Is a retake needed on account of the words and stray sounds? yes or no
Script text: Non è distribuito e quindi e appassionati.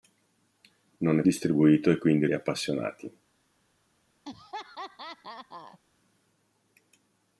yes